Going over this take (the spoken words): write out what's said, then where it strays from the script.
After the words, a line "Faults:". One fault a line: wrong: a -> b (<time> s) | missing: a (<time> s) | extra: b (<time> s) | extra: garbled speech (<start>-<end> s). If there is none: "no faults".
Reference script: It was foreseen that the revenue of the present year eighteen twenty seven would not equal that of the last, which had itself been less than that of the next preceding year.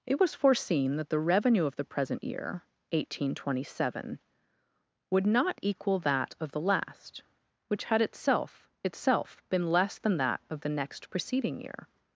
It was foreseen that the revenue of the present year eighteen twenty seven would not equal that of the last, which had itself itself been less than that of the next preceding year.
Faults:
extra: itself (8.8 s)